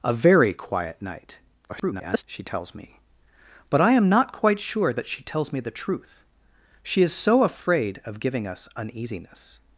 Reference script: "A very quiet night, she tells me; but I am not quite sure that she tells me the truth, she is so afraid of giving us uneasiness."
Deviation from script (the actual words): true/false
true